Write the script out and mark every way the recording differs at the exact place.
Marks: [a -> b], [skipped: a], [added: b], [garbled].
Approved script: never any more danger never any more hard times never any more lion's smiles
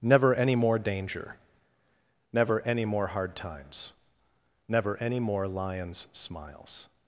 never any more danger never any more hard times never any more lion's smiles